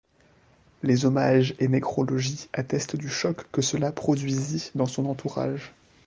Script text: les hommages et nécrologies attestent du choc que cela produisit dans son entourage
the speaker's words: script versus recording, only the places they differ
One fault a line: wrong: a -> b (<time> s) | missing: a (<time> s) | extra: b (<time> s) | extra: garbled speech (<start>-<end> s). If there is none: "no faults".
no faults